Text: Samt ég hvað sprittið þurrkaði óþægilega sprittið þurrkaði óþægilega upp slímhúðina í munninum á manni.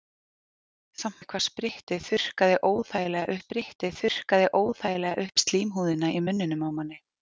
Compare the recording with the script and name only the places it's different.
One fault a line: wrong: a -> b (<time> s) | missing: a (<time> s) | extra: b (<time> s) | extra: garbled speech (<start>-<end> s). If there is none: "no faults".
no faults